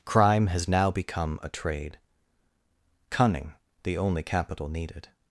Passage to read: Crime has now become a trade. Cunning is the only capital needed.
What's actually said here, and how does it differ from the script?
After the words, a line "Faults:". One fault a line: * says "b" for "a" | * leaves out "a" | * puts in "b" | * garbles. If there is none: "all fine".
Crime has now become a trade. Cunning the only capital needed.
Faults:
* leaves out "is"